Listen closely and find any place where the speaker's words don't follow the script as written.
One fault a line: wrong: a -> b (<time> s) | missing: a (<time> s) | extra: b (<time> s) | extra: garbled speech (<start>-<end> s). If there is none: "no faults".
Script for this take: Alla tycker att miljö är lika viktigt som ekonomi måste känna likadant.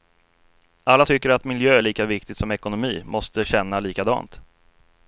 no faults